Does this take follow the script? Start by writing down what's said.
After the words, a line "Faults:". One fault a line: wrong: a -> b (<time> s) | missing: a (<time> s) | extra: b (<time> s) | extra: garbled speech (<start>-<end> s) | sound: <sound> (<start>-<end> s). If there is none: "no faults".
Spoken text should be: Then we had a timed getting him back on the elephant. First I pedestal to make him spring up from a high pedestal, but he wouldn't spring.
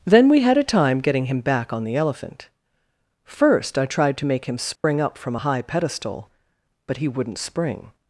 Then we had a time getting him back on the elephant. First I tried to make him spring up from a high pedestal, but he wouldn't spring.
Faults:
wrong: timed -> time (0.6 s)
wrong: pedestal -> tried (3.9 s)
sound: dropout (4.8-4.8 s)